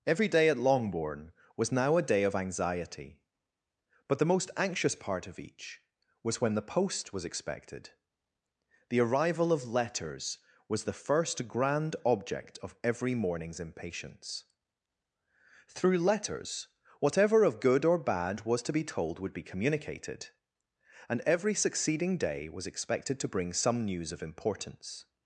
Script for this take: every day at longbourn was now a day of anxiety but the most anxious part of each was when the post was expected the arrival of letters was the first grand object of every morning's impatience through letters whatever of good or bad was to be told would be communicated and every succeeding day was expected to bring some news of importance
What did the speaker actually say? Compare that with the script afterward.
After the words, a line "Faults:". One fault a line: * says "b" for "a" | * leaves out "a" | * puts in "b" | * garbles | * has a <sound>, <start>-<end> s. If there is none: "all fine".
every day at longbourn was now a day of anxiety but the most anxious part of each was when the post was expected the arrival of letters was the first grand object of every morning's impatience through letters whatever of good or bad was to be told would be communicated and every succeeding day was expected to bring some news of importance
Faults:
all fine